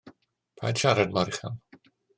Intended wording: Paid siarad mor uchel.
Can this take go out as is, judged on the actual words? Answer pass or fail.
pass